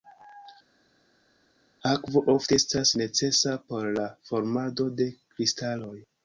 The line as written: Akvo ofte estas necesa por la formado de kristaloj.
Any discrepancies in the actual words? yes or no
no